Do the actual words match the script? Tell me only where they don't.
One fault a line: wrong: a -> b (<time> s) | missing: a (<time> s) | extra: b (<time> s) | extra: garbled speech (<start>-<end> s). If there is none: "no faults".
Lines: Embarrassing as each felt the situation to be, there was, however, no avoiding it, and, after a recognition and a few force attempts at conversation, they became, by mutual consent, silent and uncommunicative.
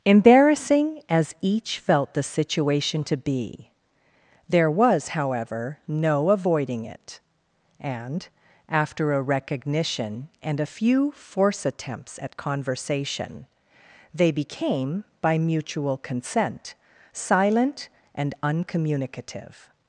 no faults